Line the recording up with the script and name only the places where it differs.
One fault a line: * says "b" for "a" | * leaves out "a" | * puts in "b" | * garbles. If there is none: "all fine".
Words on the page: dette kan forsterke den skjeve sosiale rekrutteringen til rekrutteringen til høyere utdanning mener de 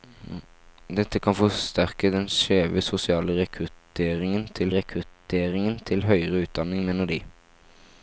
all fine